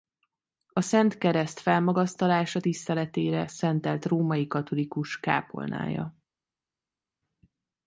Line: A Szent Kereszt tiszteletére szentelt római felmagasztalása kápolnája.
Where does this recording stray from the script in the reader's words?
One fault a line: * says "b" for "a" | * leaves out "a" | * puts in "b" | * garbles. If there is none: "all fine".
* puts in "felmagasztalása"
* says "katolikus" for "felmagasztalása"